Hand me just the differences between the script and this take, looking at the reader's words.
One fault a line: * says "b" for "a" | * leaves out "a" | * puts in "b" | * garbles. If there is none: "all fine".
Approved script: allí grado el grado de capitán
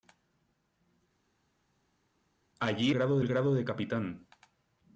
all fine